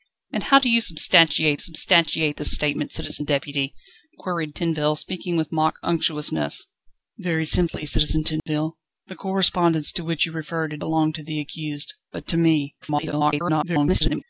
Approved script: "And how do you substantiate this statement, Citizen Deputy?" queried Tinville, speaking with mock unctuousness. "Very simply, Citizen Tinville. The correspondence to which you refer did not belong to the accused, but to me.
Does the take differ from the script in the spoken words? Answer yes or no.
yes